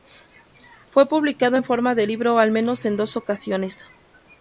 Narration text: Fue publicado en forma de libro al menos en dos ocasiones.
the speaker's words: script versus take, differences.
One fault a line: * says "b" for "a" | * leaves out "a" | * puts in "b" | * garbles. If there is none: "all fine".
all fine